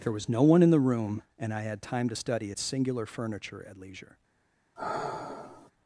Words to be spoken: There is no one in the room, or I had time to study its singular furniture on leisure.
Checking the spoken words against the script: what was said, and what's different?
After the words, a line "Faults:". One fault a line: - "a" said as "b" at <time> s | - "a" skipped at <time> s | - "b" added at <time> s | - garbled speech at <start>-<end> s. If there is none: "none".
There was no one in the room, and I had time to study its singular furniture at leisure.
Faults:
- "is" said as "was" at 0.1 s
- "or" said as "and" at 1.4 s
- "on" said as "at" at 3.7 s